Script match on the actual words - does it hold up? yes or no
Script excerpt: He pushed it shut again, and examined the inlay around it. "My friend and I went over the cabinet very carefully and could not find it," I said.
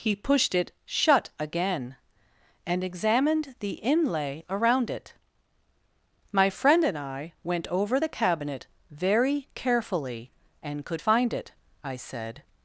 no